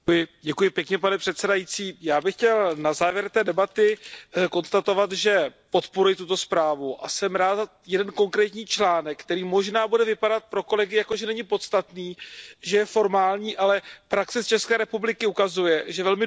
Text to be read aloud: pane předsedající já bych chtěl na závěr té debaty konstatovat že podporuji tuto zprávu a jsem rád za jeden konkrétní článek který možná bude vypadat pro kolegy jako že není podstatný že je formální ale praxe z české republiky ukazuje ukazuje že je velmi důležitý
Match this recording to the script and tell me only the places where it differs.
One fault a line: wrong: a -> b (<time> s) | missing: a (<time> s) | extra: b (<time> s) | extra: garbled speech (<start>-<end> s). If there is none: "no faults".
missing: ukazuje (15.8 s)